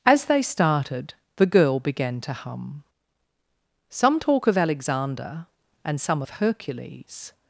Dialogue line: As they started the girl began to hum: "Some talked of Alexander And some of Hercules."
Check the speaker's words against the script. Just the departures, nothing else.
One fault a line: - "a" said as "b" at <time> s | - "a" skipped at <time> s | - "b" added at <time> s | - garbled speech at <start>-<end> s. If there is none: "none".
- "talked" said as "talk" at 4.2 s